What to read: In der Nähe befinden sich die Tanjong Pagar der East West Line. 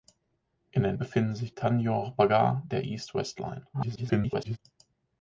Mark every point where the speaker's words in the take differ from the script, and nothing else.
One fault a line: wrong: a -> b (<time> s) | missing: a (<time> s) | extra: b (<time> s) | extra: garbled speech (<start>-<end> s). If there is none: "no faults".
missing: Nähe (0.9 s)
missing: die (1.5 s)
extra: garbled speech (3.7-4.6 s)